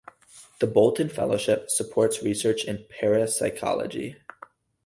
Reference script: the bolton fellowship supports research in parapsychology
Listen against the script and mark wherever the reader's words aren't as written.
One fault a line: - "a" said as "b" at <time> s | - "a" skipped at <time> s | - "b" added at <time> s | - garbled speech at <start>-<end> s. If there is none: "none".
none